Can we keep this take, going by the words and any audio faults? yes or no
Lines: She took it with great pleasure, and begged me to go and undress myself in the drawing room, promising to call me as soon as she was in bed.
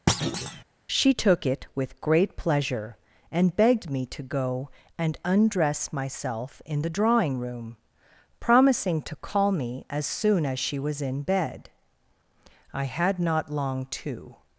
no